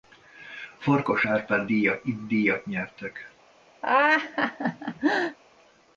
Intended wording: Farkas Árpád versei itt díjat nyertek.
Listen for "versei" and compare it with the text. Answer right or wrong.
wrong